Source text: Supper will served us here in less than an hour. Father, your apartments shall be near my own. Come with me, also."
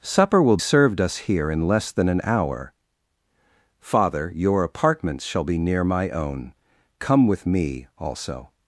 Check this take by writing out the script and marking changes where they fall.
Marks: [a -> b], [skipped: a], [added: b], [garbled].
Supper will served us here in less than an hour. Father, your apartments shall be near my own. Come with me, also."